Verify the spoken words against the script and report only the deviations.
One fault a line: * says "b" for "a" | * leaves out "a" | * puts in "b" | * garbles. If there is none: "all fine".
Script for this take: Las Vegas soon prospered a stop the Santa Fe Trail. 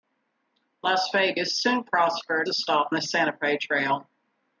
all fine